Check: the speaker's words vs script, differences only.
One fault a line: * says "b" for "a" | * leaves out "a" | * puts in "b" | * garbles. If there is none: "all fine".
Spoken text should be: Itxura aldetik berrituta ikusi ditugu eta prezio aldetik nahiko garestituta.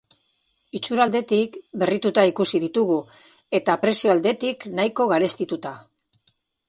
all fine